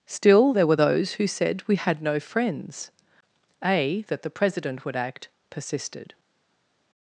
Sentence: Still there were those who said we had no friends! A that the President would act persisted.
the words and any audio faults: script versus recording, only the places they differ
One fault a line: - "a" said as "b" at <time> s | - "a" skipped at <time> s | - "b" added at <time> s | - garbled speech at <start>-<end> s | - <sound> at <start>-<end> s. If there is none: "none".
none